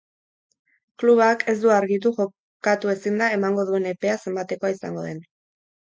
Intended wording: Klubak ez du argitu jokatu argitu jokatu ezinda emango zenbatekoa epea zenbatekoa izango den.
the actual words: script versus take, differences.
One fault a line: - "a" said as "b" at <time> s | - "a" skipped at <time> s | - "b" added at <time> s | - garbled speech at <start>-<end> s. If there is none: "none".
- "argitu jokatu" skipped at 2.9 s
- "zenbatekoa" said as "duen" at 3.7 s